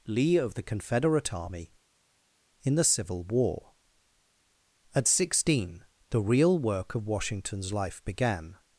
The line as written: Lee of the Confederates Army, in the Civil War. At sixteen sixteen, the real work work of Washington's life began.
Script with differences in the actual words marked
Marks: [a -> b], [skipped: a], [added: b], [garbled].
Lee of the [Confederates -> Confederate] Army, in the Civil War. At sixteen [skipped: sixteen,] the real work [skipped: work] of Washington's life began.